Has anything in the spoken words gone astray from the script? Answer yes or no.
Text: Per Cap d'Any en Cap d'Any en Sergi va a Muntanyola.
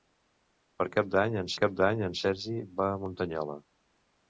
no